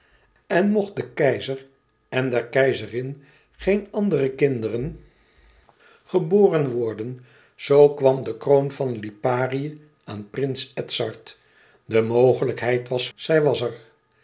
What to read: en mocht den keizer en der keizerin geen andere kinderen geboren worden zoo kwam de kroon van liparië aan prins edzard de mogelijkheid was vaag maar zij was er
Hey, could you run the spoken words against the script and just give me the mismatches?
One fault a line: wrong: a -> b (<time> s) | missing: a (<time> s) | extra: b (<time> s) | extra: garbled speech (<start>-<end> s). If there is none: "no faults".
missing: vaag maar (13.1 s)